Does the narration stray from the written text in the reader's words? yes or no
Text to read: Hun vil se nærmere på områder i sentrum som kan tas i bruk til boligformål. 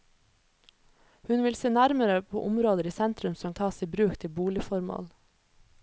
yes